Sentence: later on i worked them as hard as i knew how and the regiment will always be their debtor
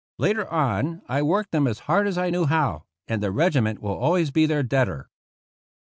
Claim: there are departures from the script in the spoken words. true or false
false